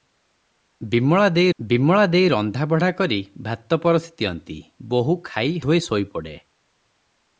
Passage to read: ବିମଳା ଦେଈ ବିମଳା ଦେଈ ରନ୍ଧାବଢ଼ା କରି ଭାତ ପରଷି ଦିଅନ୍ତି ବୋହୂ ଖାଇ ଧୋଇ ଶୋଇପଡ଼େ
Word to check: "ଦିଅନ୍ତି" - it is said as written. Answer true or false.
true